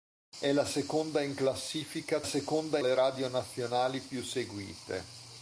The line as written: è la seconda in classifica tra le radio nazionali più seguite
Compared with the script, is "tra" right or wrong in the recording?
wrong